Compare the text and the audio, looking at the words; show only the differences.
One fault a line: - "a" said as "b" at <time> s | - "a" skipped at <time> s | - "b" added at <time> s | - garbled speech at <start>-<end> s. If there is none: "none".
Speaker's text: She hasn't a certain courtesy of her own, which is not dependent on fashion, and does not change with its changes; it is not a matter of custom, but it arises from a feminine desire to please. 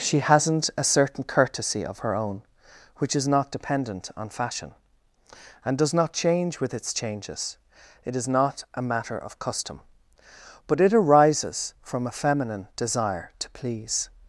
none